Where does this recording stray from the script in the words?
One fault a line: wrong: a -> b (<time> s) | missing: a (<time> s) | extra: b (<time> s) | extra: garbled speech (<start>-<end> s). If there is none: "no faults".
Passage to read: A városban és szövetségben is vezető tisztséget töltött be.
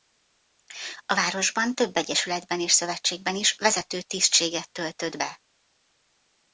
extra: több egyesületben (1.7 s)